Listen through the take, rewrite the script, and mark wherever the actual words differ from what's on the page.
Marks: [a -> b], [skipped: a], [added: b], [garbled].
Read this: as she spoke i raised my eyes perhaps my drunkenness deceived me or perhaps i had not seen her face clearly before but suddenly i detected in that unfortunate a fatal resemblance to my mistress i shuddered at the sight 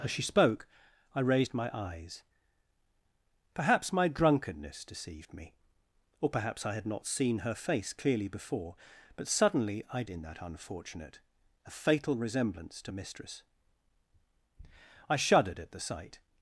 as she spoke i raised my eyes perhaps my drunkenness deceived me or perhaps i had not seen her face clearly before but suddenly i [skipped: detected] in that unfortunate a fatal resemblance to [skipped: my] mistress i shuddered at the sight